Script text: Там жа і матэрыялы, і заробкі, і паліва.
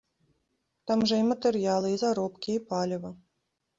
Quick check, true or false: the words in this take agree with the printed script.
true